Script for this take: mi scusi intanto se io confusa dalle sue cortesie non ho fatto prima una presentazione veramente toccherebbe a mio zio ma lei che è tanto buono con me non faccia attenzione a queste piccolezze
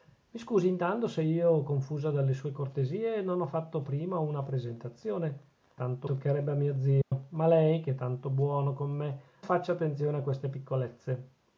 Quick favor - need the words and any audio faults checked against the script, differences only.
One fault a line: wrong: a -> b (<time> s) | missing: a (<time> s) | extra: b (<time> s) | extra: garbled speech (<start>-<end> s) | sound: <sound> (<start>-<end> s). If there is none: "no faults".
wrong: veramente -> tanto (5.7 s)
sound: dropout (7.0-7.1 s)
missing: non (9.2 s)